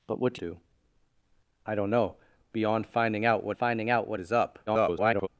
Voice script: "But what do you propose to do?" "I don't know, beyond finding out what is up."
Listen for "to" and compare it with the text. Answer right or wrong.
wrong